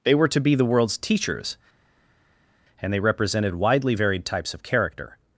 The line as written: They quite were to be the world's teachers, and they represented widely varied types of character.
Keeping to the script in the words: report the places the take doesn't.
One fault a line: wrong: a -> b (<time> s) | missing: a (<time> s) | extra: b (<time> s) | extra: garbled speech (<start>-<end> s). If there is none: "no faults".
missing: quite (0.1 s)